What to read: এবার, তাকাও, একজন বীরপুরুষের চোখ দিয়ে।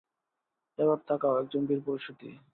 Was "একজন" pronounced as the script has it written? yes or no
yes